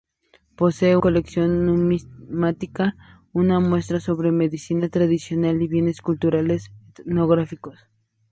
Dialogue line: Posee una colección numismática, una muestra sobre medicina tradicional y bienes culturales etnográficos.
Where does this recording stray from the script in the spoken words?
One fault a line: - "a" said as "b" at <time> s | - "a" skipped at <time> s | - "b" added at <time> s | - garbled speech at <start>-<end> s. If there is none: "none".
- "una" skipped at 1.0 s